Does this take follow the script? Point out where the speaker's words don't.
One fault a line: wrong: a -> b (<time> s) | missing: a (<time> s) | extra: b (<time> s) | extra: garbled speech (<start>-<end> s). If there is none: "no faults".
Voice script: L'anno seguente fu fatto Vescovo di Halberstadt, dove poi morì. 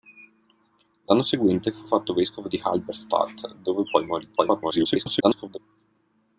extra: garbled speech (4.4-5.6 s)